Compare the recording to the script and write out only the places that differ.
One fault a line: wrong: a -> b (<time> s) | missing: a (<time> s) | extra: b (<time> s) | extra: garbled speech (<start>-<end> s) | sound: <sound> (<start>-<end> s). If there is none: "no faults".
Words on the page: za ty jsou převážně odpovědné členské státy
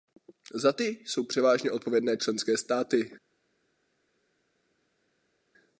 no faults